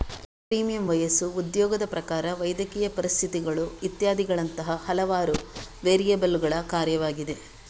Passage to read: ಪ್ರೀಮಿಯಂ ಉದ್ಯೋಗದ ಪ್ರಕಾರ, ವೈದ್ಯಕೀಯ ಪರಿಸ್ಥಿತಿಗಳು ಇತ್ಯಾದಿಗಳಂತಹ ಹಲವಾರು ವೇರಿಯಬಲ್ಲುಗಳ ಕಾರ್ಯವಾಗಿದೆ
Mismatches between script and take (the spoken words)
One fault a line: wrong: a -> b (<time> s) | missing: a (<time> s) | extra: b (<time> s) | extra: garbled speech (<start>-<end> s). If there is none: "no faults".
extra: ವಯಸ್ಸು (0.9 s)